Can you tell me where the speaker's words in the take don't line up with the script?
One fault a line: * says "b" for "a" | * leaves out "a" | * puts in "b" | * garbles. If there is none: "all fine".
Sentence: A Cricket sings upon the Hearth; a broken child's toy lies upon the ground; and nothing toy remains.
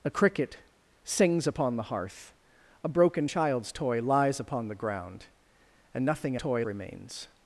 all fine